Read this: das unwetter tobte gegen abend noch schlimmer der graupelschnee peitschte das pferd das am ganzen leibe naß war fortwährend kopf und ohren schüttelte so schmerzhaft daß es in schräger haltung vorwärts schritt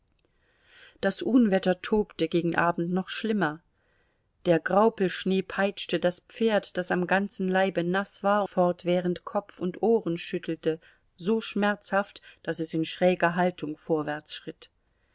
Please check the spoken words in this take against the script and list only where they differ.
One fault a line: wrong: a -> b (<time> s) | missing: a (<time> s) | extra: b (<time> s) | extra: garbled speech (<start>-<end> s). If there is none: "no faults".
no faults